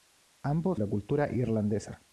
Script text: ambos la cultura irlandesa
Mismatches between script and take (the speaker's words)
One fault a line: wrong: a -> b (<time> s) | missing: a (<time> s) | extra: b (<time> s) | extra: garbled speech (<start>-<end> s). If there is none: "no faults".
no faults